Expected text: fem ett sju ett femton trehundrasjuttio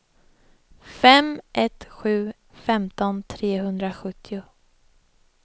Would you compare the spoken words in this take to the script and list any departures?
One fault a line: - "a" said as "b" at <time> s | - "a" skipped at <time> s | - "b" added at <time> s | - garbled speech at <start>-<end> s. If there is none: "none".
- "ett" skipped at 2.3 s